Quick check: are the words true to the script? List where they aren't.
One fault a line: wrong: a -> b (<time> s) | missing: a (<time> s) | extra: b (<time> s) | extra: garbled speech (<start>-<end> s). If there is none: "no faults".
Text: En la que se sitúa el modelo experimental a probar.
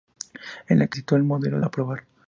missing: se (1.0 s)
missing: experimental (1.6 s)